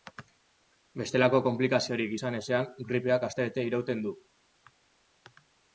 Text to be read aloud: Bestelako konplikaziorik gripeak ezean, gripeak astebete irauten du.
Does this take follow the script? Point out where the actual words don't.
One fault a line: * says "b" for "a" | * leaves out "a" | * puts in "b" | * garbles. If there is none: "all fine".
* says "izan" for "gripeak"